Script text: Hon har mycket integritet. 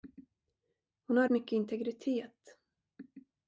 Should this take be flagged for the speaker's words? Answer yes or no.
no